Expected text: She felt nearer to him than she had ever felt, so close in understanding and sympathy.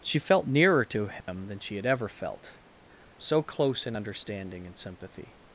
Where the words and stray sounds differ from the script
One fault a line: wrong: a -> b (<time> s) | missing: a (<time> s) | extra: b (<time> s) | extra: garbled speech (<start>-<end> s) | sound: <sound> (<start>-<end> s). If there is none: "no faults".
sound: dropout (1.2-1.3 s)